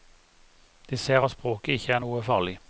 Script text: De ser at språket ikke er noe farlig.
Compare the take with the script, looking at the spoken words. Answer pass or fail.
pass